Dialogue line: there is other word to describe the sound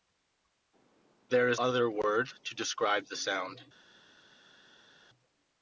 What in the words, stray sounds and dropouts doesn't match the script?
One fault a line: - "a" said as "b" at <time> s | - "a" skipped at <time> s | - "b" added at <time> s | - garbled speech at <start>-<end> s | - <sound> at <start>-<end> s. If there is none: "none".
none